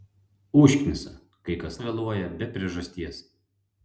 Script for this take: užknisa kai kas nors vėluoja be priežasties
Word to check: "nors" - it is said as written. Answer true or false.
false